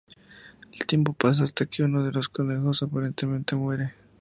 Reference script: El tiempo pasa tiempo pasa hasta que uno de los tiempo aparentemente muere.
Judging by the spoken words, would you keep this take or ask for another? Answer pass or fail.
fail